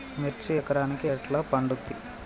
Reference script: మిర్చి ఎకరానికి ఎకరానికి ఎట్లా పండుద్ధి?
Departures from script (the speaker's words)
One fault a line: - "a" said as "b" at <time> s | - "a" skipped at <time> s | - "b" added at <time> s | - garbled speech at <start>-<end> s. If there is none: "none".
- "ఎకరానికి" skipped at 1.1 s